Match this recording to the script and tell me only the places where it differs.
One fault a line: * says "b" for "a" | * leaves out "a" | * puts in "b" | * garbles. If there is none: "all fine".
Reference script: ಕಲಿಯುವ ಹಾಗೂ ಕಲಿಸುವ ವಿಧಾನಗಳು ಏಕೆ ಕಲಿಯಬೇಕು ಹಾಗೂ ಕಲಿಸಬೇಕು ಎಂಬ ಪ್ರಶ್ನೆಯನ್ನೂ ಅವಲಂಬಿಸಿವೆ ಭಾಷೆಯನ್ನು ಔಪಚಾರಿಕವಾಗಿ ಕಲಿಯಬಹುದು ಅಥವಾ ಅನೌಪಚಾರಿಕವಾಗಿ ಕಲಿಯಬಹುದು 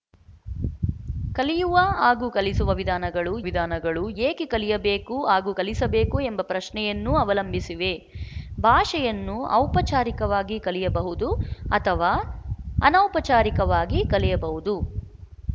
* puts in "ವಿಧಾನಗಳು"